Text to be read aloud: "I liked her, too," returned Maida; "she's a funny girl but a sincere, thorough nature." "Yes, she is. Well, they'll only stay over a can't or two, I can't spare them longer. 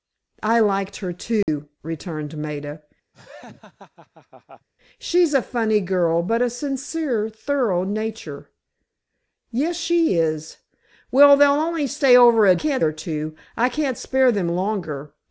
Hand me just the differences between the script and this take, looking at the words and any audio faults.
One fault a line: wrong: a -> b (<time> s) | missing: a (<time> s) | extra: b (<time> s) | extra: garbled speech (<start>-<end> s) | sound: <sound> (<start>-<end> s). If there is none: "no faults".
sound: dropout (1.4-1.5 s)
sound: laugh (3.1-4.7 s)